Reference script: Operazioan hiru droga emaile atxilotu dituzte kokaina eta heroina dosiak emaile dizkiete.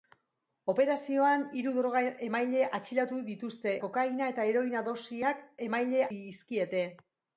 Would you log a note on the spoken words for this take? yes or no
no